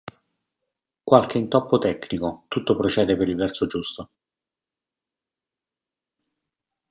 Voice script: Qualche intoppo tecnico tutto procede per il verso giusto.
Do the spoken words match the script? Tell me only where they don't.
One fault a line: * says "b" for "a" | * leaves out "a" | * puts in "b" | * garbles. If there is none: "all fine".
all fine